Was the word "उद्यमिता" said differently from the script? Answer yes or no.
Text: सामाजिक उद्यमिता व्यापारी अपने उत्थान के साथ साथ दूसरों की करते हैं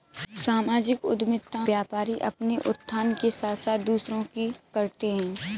no